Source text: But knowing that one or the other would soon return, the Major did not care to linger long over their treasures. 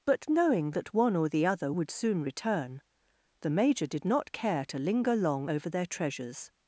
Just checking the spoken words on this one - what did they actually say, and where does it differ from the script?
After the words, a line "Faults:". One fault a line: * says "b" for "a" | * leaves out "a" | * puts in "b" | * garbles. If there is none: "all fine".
But knowing that one or the other would soon return, the Major did not care to linger long over their treasures.
Faults:
all fine